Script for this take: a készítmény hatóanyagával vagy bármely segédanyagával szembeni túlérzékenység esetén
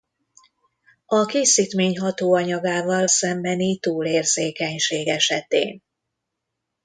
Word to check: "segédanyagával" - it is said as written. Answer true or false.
false